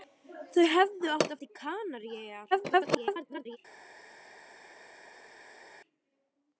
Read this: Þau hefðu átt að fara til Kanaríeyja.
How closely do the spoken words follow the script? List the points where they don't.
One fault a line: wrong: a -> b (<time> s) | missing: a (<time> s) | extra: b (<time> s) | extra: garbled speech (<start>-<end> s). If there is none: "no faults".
missing: fara (1.4 s)
extra: garbled speech (2.5-3.6 s)